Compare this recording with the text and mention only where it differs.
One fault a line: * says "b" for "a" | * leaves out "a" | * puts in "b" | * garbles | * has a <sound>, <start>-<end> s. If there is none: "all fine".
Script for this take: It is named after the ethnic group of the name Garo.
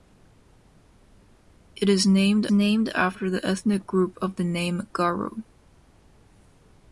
* puts in "named"